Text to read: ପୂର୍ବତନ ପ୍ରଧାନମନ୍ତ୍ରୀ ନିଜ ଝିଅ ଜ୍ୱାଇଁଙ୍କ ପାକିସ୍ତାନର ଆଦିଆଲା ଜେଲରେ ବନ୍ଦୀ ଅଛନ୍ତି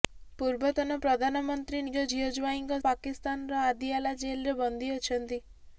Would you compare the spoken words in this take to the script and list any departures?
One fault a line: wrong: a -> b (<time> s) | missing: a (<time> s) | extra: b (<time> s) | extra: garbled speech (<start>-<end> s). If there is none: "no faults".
no faults